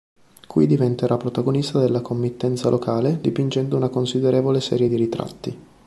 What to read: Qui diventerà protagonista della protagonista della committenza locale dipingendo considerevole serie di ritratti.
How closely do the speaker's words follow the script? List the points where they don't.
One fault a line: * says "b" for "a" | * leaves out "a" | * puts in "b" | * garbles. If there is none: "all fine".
* leaves out "protagonista della"
* puts in "una"